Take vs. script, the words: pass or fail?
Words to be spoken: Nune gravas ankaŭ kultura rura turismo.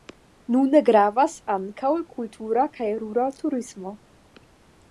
fail